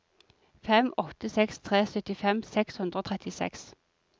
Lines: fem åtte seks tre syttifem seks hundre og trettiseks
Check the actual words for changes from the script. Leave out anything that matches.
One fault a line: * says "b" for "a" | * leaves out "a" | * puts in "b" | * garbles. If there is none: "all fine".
all fine